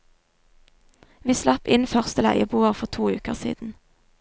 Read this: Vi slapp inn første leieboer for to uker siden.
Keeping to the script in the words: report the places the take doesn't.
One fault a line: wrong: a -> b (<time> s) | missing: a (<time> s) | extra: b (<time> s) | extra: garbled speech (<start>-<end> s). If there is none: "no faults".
no faults